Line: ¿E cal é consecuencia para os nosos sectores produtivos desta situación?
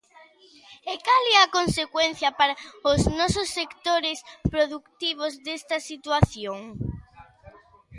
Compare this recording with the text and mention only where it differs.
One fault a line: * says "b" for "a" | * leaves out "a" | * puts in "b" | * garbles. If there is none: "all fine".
* puts in "a"